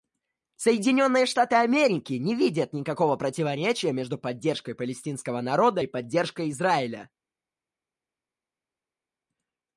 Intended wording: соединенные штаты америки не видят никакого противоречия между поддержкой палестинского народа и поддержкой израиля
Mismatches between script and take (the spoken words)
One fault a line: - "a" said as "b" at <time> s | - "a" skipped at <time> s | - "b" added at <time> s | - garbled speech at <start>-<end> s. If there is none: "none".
none